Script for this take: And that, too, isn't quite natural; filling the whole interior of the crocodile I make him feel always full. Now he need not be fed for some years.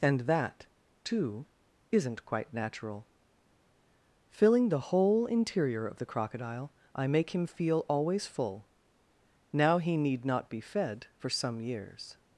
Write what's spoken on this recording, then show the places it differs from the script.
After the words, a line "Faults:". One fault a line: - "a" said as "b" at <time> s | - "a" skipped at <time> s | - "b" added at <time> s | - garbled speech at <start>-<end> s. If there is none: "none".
And that, too, isn't quite natural; filling the whole interior of the crocodile I make him feel always full. Now he need not be fed for some years.
Faults:
none